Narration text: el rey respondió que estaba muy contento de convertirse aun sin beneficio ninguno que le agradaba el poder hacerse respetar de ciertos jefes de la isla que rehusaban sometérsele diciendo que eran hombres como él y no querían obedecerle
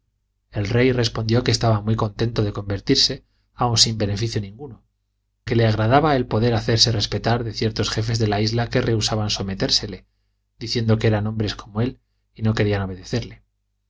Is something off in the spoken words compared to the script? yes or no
no